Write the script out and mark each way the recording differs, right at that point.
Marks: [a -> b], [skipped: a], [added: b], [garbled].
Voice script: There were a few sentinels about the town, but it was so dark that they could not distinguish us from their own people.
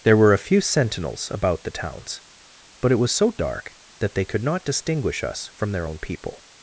There were a few sentinels about the [town, -> towns] but it was so dark that they could not distinguish us from their own people.